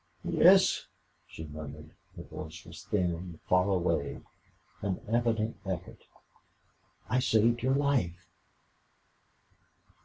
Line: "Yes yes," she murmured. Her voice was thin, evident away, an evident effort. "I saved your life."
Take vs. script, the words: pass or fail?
fail